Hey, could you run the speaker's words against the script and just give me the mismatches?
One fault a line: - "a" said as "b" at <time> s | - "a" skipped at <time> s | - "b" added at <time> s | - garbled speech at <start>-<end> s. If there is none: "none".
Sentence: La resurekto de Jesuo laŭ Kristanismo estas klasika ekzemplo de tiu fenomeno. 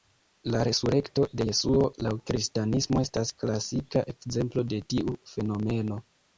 none